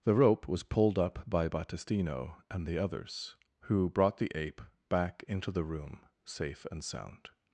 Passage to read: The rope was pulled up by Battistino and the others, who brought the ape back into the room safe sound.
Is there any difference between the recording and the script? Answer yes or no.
yes